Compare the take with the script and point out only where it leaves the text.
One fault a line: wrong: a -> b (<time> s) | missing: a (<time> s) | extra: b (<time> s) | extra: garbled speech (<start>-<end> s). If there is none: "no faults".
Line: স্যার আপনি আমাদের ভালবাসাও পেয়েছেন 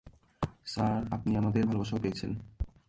no faults